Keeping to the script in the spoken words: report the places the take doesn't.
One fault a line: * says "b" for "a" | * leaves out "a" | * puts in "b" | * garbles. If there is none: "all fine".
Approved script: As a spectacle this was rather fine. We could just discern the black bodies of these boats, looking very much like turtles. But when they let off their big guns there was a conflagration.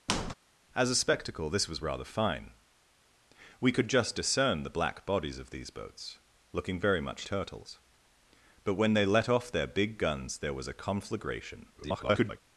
* leaves out "like"
* garbles